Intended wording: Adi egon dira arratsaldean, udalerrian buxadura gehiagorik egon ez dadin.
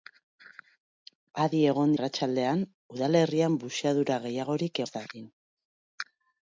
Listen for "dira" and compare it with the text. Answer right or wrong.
wrong